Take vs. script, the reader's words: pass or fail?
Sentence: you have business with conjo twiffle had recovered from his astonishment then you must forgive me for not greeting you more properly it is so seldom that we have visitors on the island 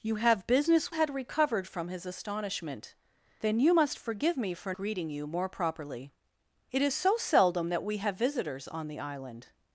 fail